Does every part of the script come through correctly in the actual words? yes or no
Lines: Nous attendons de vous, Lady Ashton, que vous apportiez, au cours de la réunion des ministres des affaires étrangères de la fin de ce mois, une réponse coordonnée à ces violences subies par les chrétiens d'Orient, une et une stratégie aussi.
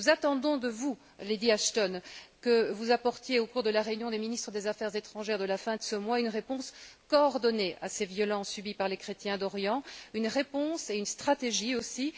no